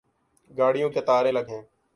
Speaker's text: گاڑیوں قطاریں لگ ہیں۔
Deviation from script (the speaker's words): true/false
false